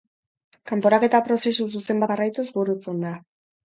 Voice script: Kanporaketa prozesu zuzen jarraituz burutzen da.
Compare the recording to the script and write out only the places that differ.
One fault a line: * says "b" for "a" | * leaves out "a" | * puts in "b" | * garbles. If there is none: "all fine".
all fine